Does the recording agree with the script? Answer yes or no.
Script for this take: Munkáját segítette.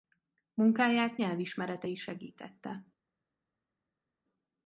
no